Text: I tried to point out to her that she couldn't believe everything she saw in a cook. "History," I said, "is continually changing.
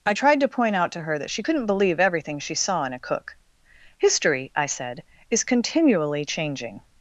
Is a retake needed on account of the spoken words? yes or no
no